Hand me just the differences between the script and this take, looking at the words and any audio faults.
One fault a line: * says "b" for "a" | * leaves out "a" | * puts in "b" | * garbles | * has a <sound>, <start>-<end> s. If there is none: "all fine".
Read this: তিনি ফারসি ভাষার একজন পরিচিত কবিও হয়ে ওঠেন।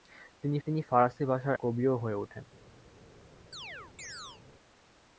* puts in "তিনি"
* leaves out "একজন পরিচিত"
* has a chirp, 3.5-4.4 s